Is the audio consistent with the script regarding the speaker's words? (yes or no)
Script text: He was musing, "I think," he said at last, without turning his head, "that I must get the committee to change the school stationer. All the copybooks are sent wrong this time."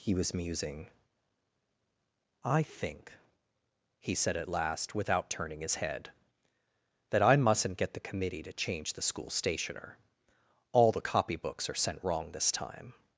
no